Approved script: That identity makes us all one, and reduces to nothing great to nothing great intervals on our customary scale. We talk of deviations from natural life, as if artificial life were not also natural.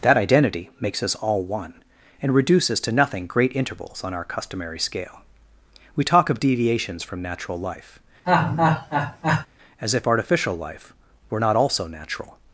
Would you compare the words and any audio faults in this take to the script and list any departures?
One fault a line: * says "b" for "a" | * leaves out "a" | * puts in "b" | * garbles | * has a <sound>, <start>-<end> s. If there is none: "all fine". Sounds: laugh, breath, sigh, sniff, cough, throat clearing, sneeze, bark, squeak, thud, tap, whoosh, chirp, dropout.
* leaves out "to nothing great"
* has a laugh, 8.3-9.5 s